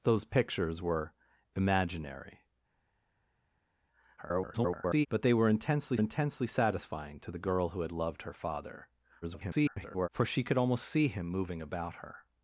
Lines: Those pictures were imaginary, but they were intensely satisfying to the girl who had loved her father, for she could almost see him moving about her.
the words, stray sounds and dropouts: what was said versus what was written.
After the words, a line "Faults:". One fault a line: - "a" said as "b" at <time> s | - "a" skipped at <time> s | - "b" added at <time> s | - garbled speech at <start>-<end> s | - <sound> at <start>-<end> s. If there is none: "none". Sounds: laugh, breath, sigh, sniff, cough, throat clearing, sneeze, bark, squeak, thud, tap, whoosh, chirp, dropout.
Those pictures were imaginary, [garbled] but they were intensely intensely satisfying to the girl who had loved her father, [garbled] for she could almost see him moving about her.
Faults:
- garbled speech at 4.2-5.1 s
- "intensely" added at 6.0 s
- garbled speech at 9.2-10.1 s